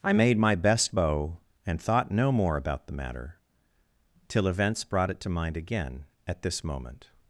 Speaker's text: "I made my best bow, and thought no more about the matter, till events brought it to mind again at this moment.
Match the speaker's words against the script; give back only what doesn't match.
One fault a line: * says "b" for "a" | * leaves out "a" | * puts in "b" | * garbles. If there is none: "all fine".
all fine